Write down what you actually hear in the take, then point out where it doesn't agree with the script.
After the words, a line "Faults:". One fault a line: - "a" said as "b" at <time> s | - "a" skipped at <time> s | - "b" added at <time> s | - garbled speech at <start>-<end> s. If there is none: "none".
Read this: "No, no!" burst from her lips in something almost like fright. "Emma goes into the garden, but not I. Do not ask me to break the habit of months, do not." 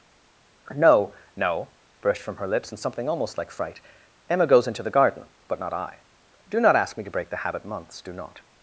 "No, no!" burst from her lips in something almost like fright. "Emma goes into the garden, but not I. Do not ask me to break the habit months, do not."
Faults:
- "of" skipped at 7.7 s